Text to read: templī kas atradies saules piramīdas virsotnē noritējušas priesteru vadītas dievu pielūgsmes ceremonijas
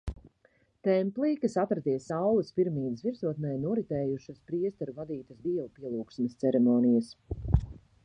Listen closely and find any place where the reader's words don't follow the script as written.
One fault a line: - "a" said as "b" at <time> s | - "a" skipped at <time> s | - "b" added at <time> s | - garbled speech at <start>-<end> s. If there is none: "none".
none